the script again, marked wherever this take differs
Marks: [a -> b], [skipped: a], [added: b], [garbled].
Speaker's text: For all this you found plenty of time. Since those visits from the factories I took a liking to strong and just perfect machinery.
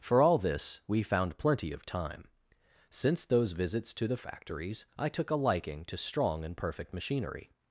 For all this [you -> we] found plenty of time. Since those visits [from -> to] the factories I took a liking to strong and [skipped: just] perfect machinery.